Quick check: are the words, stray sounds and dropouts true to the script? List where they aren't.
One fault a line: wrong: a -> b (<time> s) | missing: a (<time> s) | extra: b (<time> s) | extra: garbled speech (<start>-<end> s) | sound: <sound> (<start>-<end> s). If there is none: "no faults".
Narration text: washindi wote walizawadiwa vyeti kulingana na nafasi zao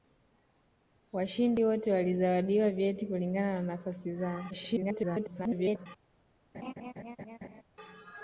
extra: garbled speech (4.5-5.9 s)
sound: laugh (6.5-7.6 s)